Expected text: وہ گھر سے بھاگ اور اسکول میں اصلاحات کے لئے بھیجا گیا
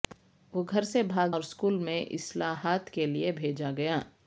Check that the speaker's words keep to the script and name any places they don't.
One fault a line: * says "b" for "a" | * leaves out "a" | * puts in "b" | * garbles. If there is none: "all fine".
all fine